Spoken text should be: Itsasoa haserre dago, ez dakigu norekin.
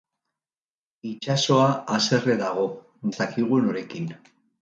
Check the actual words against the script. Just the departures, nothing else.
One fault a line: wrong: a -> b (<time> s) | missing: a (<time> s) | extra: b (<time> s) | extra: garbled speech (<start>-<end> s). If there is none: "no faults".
no faults